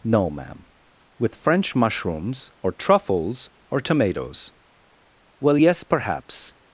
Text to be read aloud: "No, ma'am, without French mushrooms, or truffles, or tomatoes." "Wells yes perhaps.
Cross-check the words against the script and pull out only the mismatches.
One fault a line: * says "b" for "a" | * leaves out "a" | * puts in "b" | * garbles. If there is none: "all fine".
* says "with" for "without"
* says "Well" for "Wells"